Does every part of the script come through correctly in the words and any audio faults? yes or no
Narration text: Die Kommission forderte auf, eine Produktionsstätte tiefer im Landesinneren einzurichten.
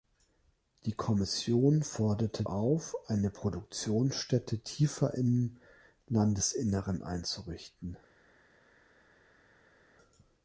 yes